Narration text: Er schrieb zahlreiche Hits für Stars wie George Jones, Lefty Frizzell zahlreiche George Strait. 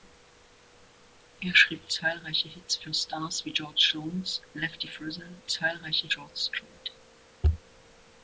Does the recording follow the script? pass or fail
pass